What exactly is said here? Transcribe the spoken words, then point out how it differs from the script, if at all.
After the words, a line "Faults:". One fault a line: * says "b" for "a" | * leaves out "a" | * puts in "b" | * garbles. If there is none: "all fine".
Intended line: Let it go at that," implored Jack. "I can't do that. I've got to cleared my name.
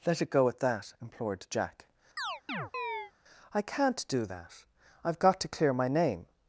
Let it go at that," implored Jack. "I can't do that. I've got to clear my name.
Faults:
* says "clear" for "cleared"